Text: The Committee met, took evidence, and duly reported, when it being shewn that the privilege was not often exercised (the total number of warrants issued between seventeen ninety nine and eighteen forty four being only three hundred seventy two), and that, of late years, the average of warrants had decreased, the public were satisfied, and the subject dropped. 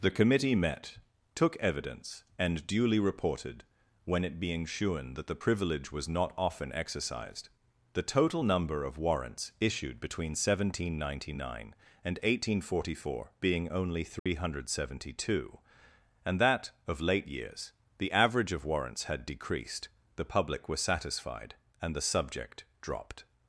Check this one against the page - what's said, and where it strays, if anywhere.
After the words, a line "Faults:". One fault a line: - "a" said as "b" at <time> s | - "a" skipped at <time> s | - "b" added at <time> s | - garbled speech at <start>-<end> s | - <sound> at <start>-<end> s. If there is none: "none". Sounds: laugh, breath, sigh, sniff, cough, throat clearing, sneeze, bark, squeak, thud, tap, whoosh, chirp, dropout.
The Committee met, took evidence, and duly reported, when it being shewn that the privilege was not often exercised (the total number of warrants issued between seventeen ninety nine and eighteen forty four being only three hundred seventy two), and that, of late years, the average of warrants had decreased, the public were satisfied, and the subject dropped.
Faults:
- dropout at 14.2-14.3 s